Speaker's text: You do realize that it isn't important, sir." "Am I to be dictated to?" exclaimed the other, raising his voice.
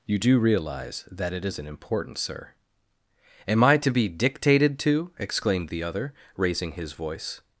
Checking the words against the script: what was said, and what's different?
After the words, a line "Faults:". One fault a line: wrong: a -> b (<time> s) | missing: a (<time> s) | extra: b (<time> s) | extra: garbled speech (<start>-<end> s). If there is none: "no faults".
You do realize that it isn't important, sir." "Am I to be dictated to?" exclaimed the other, raising his voice.
Faults:
no faults